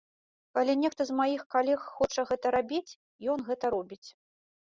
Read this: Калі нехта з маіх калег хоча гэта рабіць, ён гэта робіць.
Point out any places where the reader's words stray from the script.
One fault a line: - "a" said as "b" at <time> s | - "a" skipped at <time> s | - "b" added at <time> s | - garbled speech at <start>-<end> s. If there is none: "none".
none